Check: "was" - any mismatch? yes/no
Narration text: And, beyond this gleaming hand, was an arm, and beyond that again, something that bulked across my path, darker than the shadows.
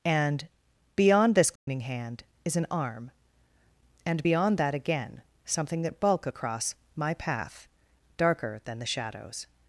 yes